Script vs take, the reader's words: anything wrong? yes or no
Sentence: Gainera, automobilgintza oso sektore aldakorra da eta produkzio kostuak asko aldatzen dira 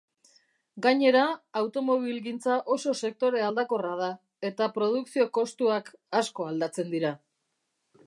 no